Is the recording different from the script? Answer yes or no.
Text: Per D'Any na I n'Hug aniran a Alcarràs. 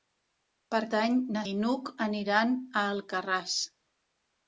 no